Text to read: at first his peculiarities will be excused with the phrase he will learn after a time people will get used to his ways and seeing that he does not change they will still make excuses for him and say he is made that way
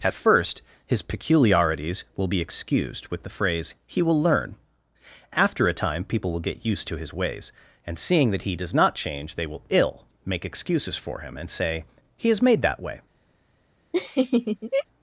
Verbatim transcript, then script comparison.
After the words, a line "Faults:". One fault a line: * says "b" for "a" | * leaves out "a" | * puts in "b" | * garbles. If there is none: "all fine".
at first his peculiarities will be excused with the phrase he will learn after a time people will get used to his ways and seeing that he does not change they will ill make excuses for him and say he is made that way
Faults:
* says "ill" for "still"